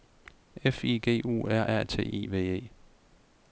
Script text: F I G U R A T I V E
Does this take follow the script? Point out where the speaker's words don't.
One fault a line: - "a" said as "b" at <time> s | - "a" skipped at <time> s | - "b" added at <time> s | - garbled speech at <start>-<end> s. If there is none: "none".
none